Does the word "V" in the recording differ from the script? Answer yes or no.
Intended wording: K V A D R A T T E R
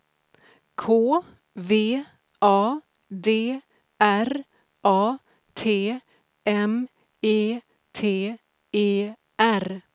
no